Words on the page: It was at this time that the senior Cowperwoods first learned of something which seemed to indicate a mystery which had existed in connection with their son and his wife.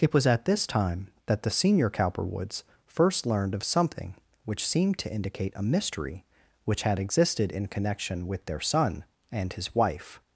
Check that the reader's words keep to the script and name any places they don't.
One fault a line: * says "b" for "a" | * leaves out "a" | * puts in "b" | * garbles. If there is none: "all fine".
all fine